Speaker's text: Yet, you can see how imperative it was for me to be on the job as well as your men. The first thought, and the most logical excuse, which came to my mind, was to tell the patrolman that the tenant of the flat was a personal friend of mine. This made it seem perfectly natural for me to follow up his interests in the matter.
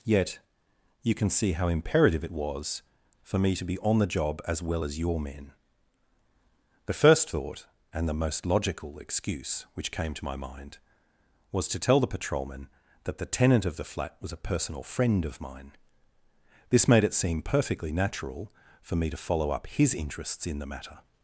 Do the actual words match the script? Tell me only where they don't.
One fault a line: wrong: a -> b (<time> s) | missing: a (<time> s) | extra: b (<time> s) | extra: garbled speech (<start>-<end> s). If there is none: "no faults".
no faults